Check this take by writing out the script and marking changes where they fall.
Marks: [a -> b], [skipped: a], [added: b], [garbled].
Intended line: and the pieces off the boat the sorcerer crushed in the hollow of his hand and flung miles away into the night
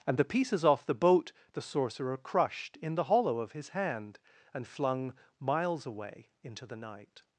and the pieces off the boat the sorcerer crushed in the hollow of his hand and flung miles away into the night